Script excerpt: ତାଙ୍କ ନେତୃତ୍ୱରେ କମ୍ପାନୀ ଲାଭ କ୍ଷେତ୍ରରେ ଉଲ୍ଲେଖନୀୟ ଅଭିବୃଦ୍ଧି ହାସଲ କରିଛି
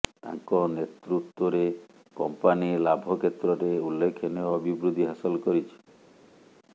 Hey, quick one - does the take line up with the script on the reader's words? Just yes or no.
yes